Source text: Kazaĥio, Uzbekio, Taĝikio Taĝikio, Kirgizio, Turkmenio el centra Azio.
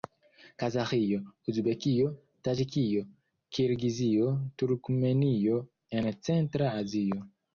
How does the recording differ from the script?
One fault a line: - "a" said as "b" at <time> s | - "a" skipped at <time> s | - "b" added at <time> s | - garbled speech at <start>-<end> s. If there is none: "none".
- "Taĝikio" skipped at 3.0 s
- "el" said as "en" at 6.0 s